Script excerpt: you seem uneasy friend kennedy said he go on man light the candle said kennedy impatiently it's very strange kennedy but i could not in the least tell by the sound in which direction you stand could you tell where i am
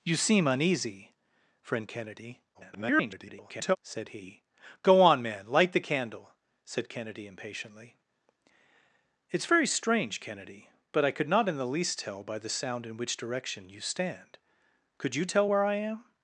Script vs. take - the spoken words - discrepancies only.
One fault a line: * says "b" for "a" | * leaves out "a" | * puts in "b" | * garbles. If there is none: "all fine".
* garbles